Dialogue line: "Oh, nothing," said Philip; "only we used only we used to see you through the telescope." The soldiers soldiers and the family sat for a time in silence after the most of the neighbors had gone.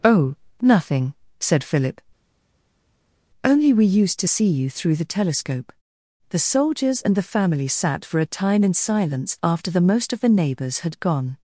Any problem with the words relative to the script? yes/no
yes